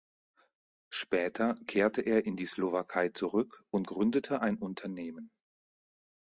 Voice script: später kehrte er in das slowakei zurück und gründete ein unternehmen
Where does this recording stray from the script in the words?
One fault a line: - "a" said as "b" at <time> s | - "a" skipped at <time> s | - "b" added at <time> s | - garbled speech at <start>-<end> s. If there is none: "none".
- "das" said as "die" at 2.4 s